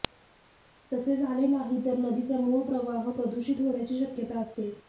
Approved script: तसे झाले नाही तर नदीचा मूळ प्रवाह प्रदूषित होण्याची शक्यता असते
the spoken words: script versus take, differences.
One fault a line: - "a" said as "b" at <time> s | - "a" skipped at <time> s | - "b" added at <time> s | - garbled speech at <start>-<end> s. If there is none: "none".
none